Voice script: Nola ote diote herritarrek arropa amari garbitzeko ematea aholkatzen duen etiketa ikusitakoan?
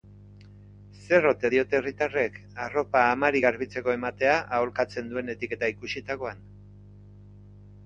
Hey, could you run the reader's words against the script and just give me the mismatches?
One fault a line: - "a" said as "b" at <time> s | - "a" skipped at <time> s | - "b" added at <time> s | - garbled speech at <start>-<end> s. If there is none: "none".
- "Nola" said as "Zer" at 1.0 s